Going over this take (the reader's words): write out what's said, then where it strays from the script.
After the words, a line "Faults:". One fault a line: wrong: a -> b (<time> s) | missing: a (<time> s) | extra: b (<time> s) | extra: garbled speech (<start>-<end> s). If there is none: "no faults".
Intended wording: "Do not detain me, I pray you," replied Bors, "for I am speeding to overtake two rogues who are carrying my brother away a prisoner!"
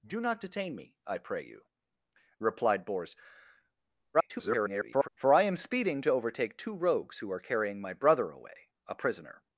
"Do not detain me, I pray you," replied Bors, [garbled] "for I am speeding to overtake two rogues who are carrying my brother away a prisoner!"
Faults:
extra: garbled speech (4.1-5.1 s)